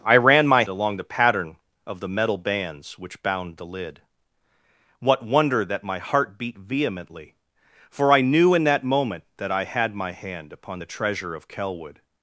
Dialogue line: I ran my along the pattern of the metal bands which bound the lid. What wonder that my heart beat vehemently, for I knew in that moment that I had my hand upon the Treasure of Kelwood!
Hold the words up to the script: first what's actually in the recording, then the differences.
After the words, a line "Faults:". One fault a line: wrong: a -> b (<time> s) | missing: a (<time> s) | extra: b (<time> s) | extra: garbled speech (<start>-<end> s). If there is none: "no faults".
I ran my along the pattern of the metal bands which bound the lid. What wonder that my heart beat vehemently, for I knew in that moment that I had my hand upon the Treasure of Kelwood!
Faults:
no faults